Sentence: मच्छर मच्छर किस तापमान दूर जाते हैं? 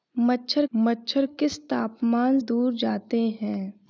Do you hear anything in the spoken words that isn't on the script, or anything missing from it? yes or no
no